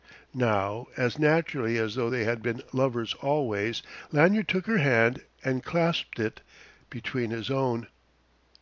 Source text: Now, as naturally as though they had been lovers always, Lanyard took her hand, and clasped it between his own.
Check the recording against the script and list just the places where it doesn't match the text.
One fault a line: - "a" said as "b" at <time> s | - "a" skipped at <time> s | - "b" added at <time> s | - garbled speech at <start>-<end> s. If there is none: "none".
none